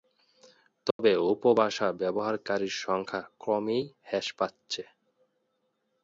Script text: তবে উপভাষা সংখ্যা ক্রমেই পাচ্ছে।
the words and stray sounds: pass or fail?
fail